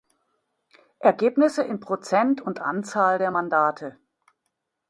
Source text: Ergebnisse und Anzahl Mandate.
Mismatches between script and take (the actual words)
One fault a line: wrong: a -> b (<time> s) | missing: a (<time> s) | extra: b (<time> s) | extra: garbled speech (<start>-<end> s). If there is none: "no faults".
extra: in Prozent (1.6 s)
extra: der (3.2 s)